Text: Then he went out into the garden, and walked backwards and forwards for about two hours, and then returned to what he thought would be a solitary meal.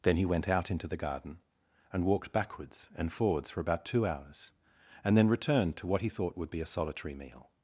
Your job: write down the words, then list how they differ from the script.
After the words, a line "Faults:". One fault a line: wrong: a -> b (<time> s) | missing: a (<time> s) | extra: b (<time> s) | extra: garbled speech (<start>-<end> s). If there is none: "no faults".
Then he went out into the garden, and walked backwards and forwards for about two hours, and then returned to what he thought would be a solitary meal.
Faults:
no faults